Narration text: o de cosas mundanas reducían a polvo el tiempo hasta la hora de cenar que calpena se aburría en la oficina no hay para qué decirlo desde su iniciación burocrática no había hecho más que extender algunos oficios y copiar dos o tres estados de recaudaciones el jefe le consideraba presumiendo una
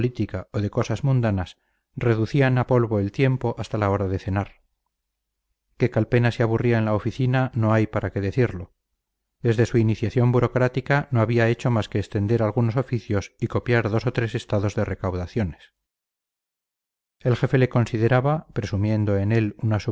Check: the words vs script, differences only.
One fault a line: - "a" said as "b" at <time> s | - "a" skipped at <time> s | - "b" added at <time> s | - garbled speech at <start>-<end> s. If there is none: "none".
- "en él" added at 19.2 s